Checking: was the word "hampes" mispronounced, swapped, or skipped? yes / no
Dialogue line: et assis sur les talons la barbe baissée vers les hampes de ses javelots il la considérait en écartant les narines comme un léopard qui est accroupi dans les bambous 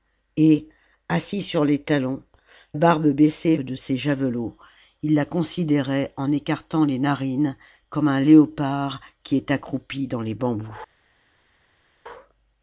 yes